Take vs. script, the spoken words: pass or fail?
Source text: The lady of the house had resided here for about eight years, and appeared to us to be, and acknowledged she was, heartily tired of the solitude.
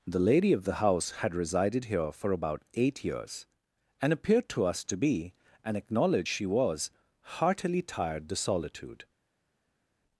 fail